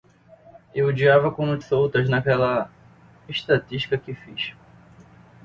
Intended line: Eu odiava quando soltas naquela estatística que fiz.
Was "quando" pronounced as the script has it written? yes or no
yes